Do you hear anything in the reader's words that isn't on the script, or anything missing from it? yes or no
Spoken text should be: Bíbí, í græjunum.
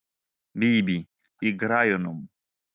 no